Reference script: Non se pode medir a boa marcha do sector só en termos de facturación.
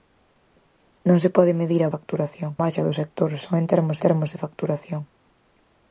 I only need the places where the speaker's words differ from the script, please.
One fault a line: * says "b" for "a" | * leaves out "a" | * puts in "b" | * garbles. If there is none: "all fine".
* says "facturación" for "boa"
* puts in "termos"